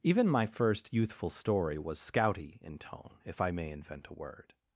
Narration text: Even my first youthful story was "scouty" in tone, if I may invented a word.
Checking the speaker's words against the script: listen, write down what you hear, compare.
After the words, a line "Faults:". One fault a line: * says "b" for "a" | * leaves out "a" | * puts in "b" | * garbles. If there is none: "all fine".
Even my first youthful story was "scouty" in tone, if I may invent a word.
Faults:
* says "invent" for "invented"